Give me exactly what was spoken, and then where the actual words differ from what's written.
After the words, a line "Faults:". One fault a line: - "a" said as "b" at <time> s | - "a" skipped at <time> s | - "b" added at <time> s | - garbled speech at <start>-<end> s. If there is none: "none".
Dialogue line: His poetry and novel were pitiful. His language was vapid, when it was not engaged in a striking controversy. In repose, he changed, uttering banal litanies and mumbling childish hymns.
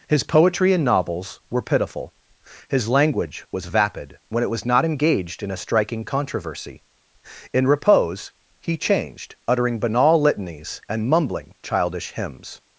His poetry and novels were pitiful. His language was vapid, when it was not engaged in a striking controversy. In repose, he changed, uttering banal litanies and mumbling childish hymns.
Faults:
- "novel" said as "novels" at 0.8 s